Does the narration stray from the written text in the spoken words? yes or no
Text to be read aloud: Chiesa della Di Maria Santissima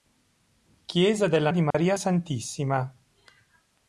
no